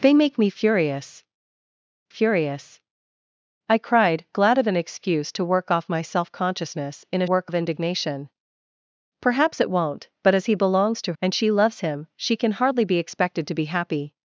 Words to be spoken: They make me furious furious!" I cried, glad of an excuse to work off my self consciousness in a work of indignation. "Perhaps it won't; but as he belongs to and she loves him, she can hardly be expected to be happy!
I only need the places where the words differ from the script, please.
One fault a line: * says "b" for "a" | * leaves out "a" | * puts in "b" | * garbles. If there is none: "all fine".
all fine